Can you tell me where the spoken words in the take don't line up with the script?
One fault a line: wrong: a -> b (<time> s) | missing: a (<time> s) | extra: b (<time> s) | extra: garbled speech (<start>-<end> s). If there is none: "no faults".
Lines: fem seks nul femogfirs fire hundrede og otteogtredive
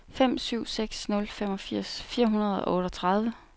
extra: syv (0.4 s)